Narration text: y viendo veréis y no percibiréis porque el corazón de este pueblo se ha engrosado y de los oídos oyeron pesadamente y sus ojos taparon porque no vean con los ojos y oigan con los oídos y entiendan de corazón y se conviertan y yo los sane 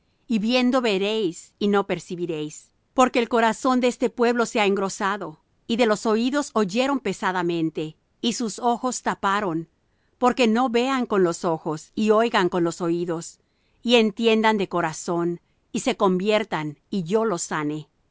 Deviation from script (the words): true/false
false